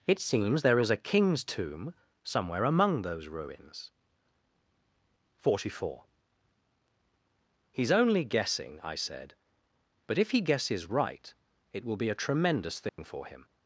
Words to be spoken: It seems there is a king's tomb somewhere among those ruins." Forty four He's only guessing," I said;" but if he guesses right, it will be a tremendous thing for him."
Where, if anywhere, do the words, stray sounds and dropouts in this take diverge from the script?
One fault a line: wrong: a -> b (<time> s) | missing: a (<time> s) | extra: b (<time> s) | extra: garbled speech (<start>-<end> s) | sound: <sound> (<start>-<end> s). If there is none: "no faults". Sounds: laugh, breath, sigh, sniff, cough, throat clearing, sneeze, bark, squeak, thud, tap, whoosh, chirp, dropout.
sound: dropout (12.9-13.0 s)